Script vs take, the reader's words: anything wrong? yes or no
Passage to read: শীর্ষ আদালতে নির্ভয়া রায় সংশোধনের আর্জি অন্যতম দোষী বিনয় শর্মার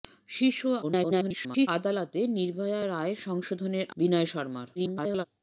yes